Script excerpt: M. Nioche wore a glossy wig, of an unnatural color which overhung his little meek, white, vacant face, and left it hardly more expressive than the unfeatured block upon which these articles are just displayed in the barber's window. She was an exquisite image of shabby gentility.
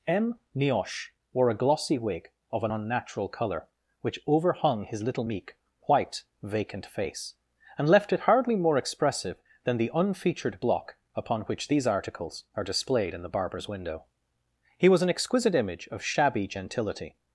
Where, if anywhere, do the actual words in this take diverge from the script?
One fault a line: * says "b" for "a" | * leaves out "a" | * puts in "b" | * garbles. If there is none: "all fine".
* leaves out "just"
* says "He" for "She"